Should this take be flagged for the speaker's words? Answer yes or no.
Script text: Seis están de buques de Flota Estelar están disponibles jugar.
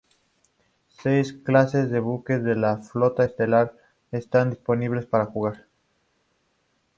yes